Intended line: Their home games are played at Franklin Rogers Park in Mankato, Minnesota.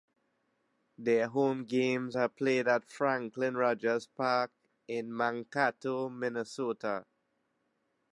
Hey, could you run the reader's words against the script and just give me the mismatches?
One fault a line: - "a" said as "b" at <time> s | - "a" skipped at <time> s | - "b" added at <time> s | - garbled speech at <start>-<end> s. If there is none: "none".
none